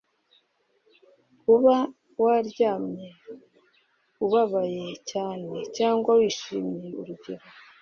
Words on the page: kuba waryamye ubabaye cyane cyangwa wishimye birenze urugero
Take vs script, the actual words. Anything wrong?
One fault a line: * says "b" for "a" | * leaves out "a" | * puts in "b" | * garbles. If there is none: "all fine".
* leaves out "birenze"